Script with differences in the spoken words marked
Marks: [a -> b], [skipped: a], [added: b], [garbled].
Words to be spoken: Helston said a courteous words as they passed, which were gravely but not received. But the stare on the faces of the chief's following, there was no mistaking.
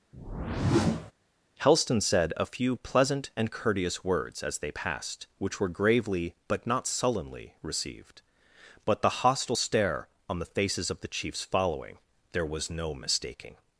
Helston said a [added: few pleasant and] courteous words as they passed, which were gravely but not [added: sullenly] received. But the [added: hostile] stare on the faces of the chief's following, there was no mistaking.